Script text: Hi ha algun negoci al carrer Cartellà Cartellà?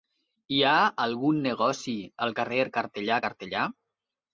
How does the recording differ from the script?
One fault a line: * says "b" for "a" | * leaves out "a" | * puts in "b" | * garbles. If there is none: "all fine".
all fine